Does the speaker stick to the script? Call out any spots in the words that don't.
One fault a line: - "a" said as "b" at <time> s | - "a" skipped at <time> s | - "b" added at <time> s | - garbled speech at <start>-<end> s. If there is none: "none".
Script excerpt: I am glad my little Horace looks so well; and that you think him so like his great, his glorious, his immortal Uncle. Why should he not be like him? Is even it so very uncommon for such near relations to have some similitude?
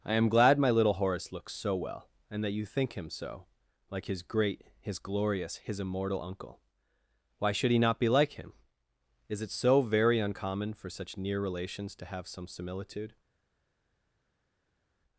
- "even" skipped at 9.4 s